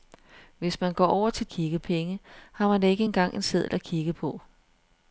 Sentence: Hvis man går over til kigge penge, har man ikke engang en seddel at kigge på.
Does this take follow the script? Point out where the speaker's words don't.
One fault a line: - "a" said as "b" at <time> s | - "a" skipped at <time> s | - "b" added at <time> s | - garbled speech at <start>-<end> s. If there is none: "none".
none